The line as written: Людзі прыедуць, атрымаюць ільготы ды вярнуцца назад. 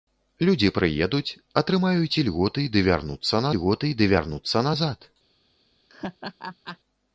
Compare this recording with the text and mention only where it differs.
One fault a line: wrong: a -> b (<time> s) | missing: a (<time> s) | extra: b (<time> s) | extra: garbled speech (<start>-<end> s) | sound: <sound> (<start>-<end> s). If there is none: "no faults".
extra: ільготы ды вярнуцца (3.5 s)
sound: laugh (5.9-6.8 s)